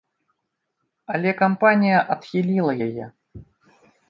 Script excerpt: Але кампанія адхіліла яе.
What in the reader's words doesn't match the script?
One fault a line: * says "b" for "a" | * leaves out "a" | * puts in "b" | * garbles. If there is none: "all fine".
all fine